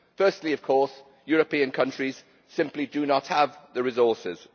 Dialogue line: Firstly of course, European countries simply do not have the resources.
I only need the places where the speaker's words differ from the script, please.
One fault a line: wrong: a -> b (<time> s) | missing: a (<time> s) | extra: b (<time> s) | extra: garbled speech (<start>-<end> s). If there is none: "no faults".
no faults